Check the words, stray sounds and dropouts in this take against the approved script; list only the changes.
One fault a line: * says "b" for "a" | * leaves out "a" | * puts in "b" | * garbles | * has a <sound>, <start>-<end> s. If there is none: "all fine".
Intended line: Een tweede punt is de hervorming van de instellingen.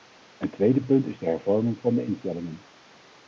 all fine